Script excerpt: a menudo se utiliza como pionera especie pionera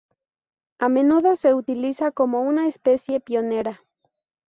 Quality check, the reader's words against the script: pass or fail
fail